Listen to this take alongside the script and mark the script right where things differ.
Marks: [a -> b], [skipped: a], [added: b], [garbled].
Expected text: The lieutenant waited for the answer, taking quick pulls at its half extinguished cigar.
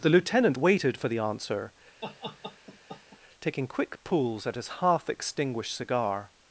The lieutenant waited for the answer, taking quick pulls at [its -> his] half extinguished cigar.